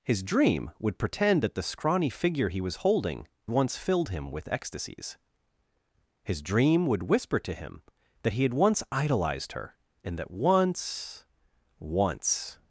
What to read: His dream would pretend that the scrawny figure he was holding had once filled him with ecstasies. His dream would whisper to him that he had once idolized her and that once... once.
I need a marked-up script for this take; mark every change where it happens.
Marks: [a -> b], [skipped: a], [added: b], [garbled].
His dream would pretend that the scrawny figure he was holding [skipped: had] once filled him with ecstasies. His dream would whisper to him that he had once idolized her and that once... once.